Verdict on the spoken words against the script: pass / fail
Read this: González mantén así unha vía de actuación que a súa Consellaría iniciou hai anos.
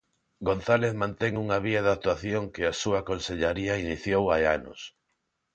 fail